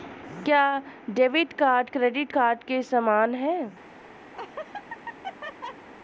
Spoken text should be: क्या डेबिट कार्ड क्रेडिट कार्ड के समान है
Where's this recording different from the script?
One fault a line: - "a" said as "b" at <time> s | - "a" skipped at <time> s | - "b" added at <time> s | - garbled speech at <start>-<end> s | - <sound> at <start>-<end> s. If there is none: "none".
- laugh at 4.3-5.9 s